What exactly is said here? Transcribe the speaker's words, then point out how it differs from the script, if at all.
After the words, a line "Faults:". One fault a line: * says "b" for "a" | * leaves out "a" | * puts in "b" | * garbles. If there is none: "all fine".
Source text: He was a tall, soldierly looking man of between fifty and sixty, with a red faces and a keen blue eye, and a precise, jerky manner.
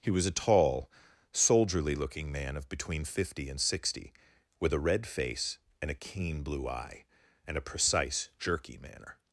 He was a tall, soldierly looking man of between fifty and sixty, with a red face and a keen blue eye, and a precise, jerky manner.
Faults:
* says "face" for "faces"